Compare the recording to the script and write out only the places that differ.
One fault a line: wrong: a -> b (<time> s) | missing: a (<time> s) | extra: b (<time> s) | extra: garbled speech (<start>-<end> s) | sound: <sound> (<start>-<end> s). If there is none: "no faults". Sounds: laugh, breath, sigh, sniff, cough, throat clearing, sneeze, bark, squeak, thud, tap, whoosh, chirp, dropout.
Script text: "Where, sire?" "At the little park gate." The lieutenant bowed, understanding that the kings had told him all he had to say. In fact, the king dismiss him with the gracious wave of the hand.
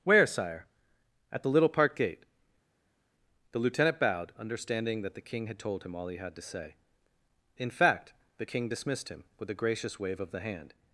wrong: kings -> king (5.3 s)
wrong: dismiss -> dismissed (8.7 s)
wrong: the -> a (9.5 s)